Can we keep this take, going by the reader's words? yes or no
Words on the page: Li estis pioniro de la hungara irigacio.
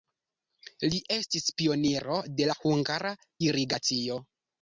yes